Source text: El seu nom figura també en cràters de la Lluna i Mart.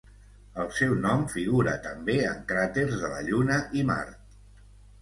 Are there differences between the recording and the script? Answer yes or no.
no